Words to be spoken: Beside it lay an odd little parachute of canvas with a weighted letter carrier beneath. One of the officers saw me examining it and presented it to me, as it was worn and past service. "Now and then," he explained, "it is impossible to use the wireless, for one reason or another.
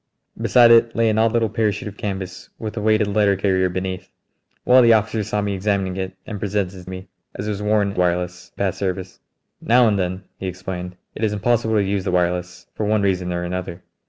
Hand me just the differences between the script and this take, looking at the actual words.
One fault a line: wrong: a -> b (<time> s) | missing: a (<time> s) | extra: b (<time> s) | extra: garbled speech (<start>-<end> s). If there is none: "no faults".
missing: to (6.9 s)
wrong: and -> wireless (7.9 s)